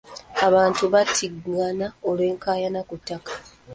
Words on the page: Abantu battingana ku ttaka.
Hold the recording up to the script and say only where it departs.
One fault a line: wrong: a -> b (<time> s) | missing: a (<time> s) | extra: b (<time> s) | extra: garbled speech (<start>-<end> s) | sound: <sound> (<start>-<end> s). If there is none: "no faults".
extra: olw'enkaayana (2.1 s)